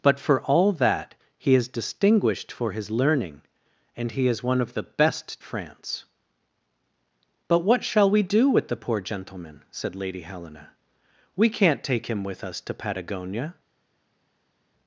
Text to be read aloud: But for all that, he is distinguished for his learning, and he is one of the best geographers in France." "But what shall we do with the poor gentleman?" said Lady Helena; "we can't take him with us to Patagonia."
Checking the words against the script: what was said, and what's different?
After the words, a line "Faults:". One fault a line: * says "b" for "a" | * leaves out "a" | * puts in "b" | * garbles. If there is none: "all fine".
But for all that, he is distinguished for his learning, and he is one of the best France." "But what shall we do with the poor gentleman?" said Lady Helena; "we can't take him with us to Patagonia."
Faults:
* leaves out "geographers in"